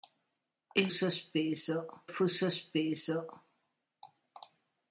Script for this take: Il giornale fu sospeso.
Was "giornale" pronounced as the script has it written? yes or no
no